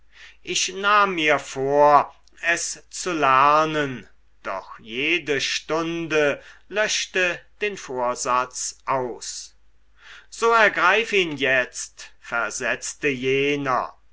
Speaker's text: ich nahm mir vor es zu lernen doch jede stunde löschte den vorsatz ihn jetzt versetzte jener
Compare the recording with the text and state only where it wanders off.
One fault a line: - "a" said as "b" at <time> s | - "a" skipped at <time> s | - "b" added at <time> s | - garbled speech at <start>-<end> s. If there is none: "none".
- "aus so ergreif" added at 8.9 s